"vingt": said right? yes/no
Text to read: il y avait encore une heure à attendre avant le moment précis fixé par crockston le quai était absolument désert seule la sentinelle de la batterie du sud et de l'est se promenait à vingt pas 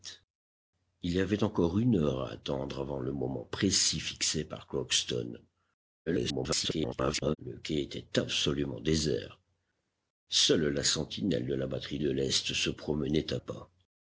no